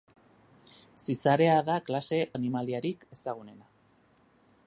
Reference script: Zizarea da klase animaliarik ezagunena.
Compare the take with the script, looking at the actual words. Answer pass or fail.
pass